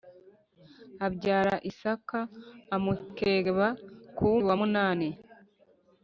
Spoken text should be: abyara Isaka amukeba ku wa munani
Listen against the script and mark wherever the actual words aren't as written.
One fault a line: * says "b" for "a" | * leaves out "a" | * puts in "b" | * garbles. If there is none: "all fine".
all fine